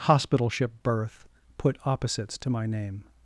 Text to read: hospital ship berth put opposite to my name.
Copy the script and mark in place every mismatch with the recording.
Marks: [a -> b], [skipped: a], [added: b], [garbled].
hospital ship berth put [opposite -> opposites] to my name.